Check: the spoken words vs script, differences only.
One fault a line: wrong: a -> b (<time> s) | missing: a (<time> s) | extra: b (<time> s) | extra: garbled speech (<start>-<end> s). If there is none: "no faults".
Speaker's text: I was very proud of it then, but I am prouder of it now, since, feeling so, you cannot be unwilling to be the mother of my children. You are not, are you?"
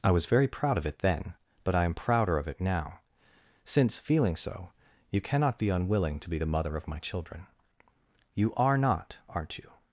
wrong: are -> aren't (9.3 s)